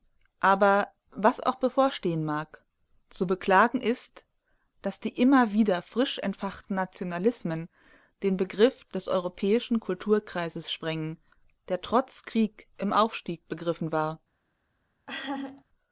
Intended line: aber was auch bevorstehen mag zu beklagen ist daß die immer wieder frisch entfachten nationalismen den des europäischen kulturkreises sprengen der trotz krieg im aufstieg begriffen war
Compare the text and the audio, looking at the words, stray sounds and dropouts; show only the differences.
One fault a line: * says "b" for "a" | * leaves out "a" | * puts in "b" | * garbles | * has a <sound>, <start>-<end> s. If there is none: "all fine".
* puts in "begriff"
* has a laugh, 15.1-15.6 s